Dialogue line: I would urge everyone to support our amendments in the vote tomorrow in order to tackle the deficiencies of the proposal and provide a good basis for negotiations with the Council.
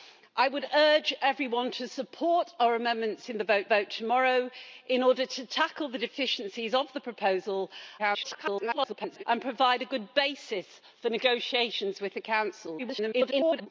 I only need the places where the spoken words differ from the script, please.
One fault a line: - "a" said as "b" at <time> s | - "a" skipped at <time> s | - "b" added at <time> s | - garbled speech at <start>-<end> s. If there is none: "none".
- "vote" added at 3.6 s
- garbled speech at 8.0-9.2 s
- garbled speech at 12.8-13.7 s